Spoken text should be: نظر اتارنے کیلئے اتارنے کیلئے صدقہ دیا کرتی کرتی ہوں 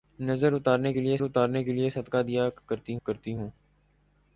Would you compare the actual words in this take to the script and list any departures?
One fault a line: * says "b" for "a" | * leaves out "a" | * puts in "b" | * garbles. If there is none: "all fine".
all fine